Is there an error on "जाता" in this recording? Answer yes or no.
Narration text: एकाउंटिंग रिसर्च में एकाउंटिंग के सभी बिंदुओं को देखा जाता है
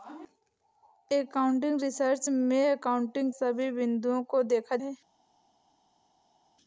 yes